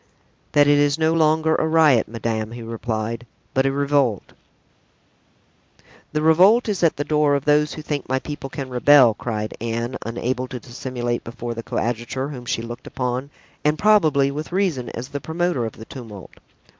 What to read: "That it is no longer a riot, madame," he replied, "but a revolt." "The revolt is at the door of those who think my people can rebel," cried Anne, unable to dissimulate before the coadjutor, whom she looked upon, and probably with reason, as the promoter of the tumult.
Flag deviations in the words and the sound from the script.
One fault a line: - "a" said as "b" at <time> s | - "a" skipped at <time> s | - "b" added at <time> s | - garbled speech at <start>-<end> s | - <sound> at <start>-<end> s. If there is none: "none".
none